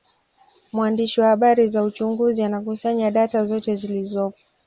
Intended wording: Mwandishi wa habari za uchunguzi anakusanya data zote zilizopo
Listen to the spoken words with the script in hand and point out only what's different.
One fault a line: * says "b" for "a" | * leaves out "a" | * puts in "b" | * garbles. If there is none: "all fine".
all fine